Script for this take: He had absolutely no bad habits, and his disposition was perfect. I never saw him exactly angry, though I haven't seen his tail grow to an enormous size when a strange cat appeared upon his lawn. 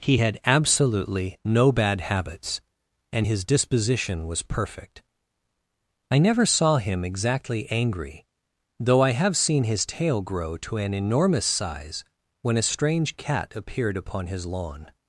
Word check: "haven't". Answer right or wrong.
wrong